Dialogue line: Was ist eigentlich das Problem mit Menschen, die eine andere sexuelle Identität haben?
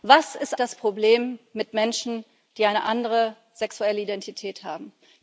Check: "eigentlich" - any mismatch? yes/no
yes